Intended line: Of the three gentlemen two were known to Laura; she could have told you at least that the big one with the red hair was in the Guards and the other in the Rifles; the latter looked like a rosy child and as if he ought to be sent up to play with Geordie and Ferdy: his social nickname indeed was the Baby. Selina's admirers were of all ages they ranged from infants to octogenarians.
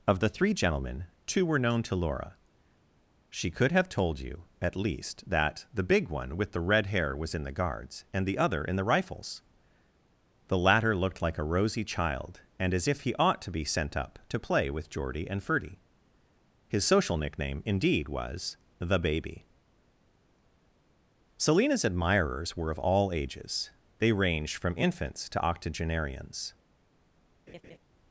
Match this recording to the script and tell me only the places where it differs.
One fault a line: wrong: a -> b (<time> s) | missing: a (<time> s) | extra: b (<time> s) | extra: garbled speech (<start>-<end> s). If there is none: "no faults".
no faults